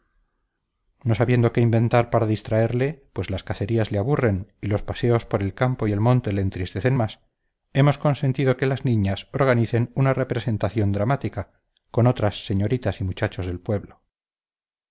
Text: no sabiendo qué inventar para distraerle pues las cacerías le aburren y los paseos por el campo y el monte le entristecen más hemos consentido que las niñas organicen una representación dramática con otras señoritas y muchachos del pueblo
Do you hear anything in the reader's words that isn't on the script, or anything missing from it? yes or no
no